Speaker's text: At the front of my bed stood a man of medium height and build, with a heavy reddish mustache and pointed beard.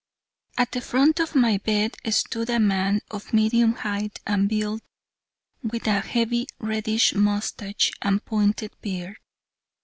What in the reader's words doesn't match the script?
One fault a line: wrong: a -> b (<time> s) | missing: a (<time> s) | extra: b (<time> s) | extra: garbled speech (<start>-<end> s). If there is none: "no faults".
no faults